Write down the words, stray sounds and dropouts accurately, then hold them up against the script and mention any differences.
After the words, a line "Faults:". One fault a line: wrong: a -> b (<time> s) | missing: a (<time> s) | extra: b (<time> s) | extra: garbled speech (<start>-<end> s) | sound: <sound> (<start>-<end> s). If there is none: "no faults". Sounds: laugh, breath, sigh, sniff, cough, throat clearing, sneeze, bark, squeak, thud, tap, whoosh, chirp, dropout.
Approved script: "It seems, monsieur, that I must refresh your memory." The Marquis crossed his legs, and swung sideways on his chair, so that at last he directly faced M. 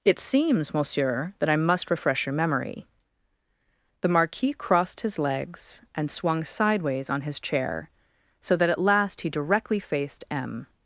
"It seems, monsieur, that I must refresh your memory." The Marquis crossed his legs, and swung sideways on his chair, so that at last he directly faced M.
Faults:
no faults